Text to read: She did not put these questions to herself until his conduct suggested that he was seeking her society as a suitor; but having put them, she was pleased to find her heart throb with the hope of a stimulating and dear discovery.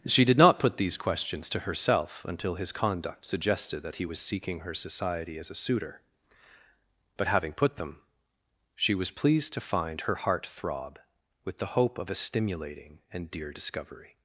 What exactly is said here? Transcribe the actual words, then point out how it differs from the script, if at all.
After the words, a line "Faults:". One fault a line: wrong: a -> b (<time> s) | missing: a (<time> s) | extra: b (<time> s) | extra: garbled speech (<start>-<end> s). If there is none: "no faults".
She did not put these questions to herself until his conduct suggested that he was seeking her society as a suitor; but having put them, she was pleased to find her heart throb with the hope of a stimulating and dear discovery.
Faults:
no faults